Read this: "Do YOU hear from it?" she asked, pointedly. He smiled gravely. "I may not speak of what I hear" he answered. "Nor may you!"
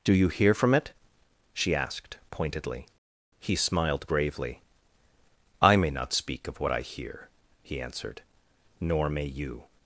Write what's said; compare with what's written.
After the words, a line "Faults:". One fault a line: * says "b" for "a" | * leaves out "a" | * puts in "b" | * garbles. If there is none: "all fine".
"Do YOU hear from it?" she asked, pointedly. He smiled gravely. "I may not speak of what I hear" he answered. "Nor may you!"
Faults:
all fine